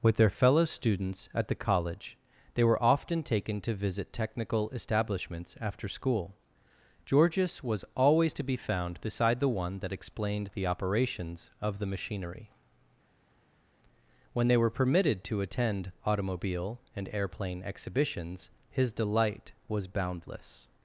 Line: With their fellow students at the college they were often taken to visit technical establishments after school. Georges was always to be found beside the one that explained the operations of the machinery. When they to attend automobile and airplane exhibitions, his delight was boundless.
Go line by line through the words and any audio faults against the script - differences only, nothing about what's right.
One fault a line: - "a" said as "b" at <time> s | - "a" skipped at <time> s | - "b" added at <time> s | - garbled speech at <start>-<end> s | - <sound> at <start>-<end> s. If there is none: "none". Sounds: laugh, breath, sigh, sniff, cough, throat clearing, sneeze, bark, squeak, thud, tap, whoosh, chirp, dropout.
- "were permitted" added at 14.6 s